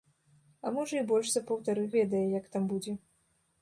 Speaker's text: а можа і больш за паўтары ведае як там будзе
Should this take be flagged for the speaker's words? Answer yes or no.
no